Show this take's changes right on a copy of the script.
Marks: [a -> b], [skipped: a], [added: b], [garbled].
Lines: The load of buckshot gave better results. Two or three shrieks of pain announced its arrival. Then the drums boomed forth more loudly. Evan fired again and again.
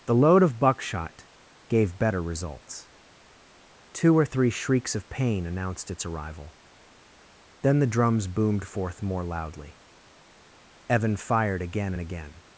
The load of buckshot gave better results. Two or three shrieks of pain announced its arrival. Then the drums boomed forth more loudly. Evan fired again and again.